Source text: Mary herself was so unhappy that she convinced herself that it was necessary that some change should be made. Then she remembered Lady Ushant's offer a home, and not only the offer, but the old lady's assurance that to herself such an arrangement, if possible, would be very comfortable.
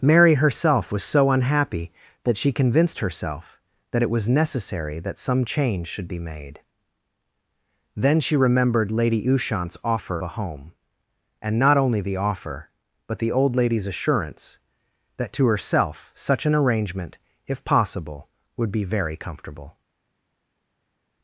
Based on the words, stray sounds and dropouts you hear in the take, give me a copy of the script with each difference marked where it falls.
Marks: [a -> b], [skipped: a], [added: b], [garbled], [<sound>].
Mary herself was so unhappy that she convinced herself that it was necessary that some change should be made. Then she remembered Lady Ushant's offer a home, and not only the offer, but the old lady's assurance that to herself such an arrangement, if possible, would be very comfortable.